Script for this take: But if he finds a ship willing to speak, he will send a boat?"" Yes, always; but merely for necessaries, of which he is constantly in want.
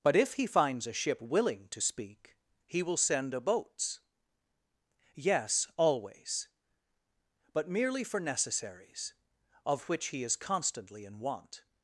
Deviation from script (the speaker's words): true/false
true